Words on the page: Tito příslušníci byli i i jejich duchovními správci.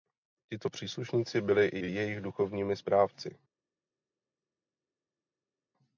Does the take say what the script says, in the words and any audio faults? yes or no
yes